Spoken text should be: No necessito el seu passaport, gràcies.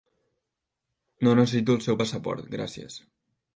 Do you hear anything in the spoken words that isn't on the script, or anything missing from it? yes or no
no